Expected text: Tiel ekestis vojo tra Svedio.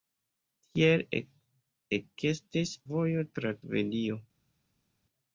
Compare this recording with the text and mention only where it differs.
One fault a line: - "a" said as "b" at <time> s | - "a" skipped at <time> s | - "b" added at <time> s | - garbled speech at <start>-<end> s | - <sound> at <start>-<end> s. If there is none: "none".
none